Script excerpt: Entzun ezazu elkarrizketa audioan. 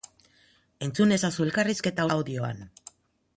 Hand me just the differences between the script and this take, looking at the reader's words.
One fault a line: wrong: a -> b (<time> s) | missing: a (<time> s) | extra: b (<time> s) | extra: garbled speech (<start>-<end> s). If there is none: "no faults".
no faults